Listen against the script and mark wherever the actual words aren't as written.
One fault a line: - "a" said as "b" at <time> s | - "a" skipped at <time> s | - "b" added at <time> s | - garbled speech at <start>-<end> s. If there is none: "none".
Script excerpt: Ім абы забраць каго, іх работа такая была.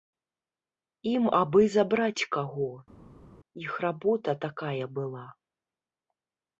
none